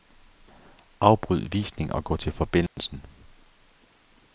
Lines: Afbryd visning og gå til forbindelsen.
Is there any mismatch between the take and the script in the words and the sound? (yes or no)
yes